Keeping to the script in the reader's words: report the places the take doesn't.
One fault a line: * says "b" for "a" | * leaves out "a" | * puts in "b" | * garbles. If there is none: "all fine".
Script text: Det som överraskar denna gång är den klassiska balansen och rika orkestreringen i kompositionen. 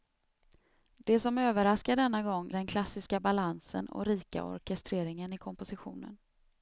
* leaves out "är"